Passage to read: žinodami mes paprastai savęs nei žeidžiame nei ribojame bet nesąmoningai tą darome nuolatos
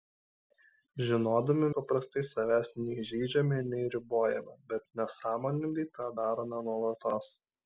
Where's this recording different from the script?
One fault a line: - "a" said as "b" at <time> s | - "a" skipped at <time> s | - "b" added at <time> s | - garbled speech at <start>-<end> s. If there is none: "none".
- "mes" skipped at 1.7 s